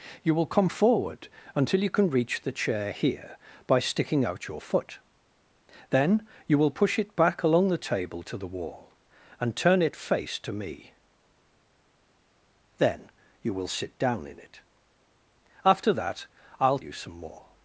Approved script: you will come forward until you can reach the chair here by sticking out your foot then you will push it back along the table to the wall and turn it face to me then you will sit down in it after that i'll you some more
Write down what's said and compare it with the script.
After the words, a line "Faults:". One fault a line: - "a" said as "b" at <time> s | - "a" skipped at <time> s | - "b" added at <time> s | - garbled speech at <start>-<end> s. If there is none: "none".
you will come forward until you can reach the chair here by sticking out your foot then you will push it back along the table to the wall and turn it face to me then you will sit down in it after that i'll you some more
Faults:
none